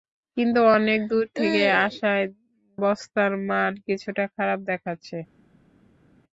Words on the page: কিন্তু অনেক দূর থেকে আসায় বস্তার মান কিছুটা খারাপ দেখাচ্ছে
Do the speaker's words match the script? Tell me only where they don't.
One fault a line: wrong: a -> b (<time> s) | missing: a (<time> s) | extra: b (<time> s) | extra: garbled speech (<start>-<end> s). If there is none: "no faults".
no faults